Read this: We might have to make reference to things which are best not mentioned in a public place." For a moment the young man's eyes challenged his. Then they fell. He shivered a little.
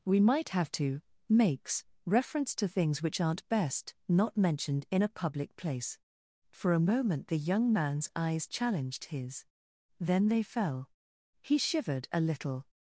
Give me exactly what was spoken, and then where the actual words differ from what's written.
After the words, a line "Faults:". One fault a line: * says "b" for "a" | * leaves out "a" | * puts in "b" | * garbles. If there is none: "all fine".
We might have to makes reference to things which aren't best not mentioned in a public place." For a moment the young man's eyes challenged his. Then they fell. He shivered a little.
Faults:
* says "makes" for "make"
* says "aren't" for "are"